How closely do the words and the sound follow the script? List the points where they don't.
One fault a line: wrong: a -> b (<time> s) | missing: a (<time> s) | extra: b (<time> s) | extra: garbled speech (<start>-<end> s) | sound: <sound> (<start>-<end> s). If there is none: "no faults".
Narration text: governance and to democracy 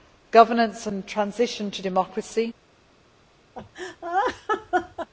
extra: transition (1.1 s)
sound: laugh (3.5-5.1 s)